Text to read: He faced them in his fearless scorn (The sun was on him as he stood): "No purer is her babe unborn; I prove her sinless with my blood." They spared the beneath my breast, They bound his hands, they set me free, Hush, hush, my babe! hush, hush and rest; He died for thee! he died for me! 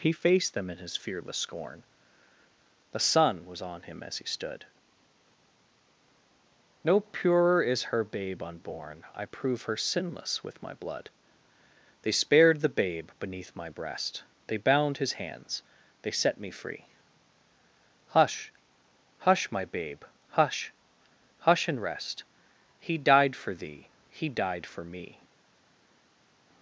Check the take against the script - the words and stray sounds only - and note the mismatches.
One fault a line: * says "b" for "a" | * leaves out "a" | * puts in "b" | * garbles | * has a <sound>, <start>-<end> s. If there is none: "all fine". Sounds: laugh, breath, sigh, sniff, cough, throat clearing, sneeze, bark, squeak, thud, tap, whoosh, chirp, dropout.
* puts in "babe"